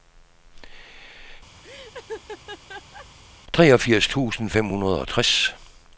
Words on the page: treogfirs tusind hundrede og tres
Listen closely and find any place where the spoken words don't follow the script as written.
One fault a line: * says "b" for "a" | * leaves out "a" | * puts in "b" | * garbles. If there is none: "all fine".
* puts in "fem"